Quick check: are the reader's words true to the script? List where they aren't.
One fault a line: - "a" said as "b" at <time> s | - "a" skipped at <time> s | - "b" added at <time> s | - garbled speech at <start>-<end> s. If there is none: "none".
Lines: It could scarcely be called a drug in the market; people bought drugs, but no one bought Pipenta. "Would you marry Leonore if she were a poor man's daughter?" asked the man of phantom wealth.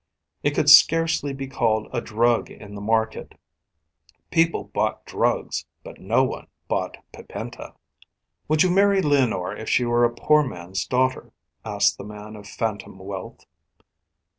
none